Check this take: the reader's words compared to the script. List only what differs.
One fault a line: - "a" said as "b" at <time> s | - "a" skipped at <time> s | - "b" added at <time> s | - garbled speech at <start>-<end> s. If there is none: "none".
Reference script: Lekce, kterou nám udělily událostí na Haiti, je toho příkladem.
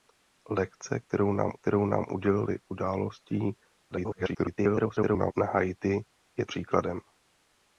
- "kterou nám" added at 1.5 s
- garbled speech at 3.9-5.3 s
- "toho" skipped at 6.4 s